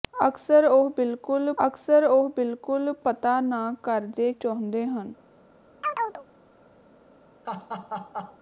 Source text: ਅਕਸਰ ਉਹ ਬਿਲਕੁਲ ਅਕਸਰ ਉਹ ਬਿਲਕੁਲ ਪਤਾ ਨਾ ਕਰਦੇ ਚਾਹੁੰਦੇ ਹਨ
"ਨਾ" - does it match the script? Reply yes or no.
yes